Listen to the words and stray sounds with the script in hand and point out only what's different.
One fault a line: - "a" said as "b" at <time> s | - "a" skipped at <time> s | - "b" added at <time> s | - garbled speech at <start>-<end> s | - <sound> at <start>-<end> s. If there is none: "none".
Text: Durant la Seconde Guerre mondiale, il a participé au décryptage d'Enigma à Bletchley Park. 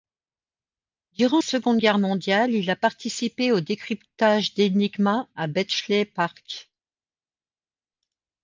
- "la" skipped at 1.4 s